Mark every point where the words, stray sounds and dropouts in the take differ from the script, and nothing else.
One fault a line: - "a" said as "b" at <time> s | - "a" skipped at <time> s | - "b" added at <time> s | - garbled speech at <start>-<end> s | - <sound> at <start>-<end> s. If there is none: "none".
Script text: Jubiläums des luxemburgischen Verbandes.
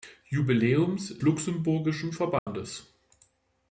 - "des" skipped at 1.2 s
- dropout at 2.4-2.5 s